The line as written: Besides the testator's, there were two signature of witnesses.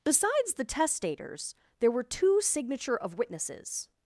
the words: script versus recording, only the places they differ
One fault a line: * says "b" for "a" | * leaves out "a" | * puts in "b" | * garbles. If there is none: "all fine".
all fine